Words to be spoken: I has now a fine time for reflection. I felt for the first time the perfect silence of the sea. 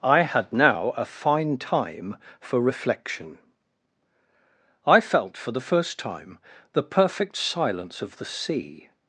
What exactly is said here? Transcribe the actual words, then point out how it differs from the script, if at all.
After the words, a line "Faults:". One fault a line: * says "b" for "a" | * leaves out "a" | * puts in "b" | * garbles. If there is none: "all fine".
I had now a fine time for reflection. I felt for the first time the perfect silence of the sea.
Faults:
* says "had" for "has"